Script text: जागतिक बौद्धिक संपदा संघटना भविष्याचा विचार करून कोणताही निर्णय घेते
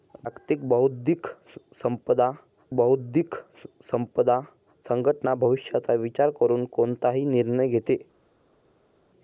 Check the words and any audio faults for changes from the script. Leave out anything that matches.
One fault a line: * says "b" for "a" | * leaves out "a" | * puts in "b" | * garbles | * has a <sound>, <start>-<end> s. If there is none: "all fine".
* puts in "बौद्धिक संपदा"